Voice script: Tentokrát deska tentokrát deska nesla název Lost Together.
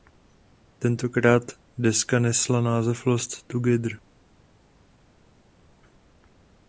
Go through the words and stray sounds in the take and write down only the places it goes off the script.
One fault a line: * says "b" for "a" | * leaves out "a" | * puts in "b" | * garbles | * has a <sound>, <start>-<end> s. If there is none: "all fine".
* leaves out "tentokrát deska"